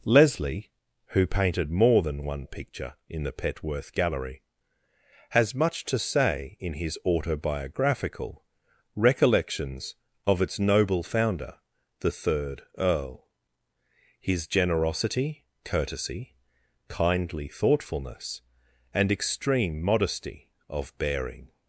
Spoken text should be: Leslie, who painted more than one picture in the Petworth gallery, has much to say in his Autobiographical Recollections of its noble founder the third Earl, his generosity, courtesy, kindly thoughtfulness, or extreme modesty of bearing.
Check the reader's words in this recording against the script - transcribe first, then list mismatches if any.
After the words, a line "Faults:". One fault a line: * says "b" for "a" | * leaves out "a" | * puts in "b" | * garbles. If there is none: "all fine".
Leslie, who painted more than one picture in the Petworth gallery, has much to say in his Autobiographical Recollections of its noble founder the third Earl, his generosity, courtesy, kindly thoughtfulness, and extreme modesty of bearing.
Faults:
* says "and" for "or"